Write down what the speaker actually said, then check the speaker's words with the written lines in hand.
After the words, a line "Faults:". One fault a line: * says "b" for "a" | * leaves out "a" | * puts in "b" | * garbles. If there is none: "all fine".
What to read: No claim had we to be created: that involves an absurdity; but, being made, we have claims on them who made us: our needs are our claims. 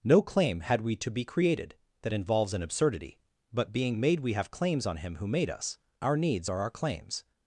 No claim had we to be created: that involves an absurdity; but, being made, we have claims on him who made us: our needs are our claims.
Faults:
* says "him" for "them"